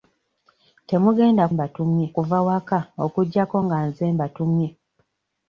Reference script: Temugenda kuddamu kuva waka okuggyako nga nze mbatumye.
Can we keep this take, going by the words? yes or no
no